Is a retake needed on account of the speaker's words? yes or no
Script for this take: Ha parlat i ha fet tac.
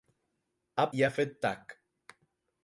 yes